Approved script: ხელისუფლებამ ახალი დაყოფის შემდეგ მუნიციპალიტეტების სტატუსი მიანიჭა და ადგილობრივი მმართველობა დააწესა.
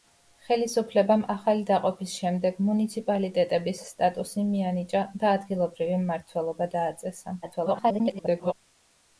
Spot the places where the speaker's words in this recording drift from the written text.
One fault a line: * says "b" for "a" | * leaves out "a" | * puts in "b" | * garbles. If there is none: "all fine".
* garbles